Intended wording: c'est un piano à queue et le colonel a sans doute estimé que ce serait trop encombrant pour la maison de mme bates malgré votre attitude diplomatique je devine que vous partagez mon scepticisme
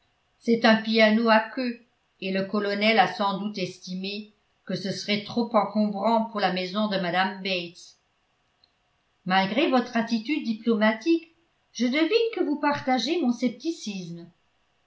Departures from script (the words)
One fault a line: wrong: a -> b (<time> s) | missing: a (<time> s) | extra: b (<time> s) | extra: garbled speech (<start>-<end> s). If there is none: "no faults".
no faults